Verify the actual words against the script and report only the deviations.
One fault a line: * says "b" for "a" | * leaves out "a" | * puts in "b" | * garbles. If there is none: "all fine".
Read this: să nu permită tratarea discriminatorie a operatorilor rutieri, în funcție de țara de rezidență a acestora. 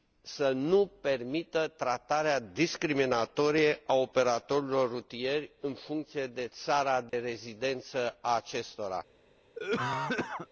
all fine